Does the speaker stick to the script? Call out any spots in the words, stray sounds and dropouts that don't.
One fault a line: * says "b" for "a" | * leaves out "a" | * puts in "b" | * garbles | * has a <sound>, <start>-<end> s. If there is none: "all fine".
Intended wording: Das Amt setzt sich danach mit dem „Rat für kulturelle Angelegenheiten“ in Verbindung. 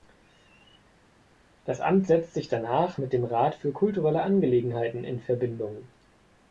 all fine